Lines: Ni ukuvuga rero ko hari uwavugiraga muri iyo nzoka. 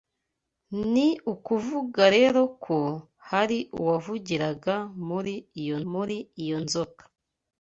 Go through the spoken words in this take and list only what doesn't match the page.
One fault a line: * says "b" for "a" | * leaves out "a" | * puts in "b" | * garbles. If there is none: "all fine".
* puts in "muri iyo"